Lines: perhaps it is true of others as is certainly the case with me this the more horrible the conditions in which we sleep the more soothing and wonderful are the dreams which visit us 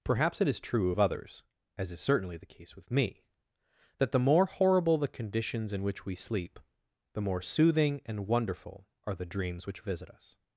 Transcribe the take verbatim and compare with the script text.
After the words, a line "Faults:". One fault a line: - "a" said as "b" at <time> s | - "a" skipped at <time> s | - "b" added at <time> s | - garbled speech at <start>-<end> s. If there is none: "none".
perhaps it is true of others as is certainly the case with me that the more horrible the conditions in which we sleep the more soothing and wonderful are the dreams which visit us
Faults:
- "this" said as "that" at 4.0 s